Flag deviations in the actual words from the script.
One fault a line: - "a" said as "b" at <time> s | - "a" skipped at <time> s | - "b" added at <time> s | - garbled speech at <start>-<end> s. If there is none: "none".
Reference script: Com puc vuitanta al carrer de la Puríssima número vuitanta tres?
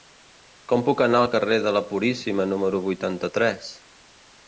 - "vuitanta" said as "anar" at 1.1 s